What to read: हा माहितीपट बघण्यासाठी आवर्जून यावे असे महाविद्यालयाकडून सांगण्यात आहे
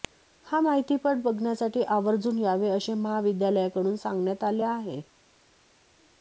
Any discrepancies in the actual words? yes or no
yes